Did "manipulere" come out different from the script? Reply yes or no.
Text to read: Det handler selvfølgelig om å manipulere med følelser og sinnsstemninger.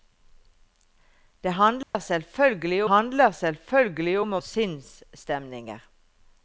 yes